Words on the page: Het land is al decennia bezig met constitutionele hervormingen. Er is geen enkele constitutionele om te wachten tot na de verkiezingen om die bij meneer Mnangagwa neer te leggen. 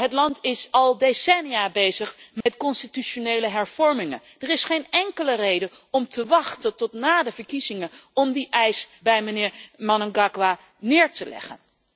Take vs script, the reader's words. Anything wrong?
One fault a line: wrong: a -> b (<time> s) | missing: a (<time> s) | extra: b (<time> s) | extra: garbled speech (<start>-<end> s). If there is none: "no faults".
wrong: constitutionele -> reden (5.3 s)
extra: eis (8.5 s)